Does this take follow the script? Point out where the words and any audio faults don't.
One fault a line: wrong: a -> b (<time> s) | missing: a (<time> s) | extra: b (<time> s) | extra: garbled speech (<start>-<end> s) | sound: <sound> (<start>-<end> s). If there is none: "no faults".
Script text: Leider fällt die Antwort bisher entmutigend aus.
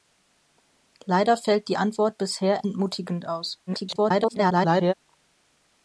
extra: garbled speech (3.7-4.9 s)